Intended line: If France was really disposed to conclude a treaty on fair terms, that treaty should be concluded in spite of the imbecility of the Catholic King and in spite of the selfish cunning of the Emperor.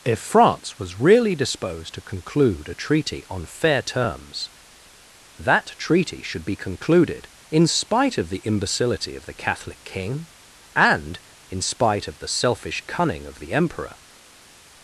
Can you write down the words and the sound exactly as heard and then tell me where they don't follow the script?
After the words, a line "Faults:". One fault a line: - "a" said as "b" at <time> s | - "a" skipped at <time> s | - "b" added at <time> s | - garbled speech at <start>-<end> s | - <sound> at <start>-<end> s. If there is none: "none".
If France was really disposed to conclude a treaty on fair terms, that treaty should be concluded in spite of the imbecility of the Catholic King and in spite of the selfish cunning of the Emperor.
Faults:
none